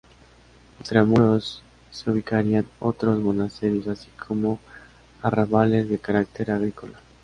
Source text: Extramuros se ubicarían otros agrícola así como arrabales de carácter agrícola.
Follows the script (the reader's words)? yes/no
no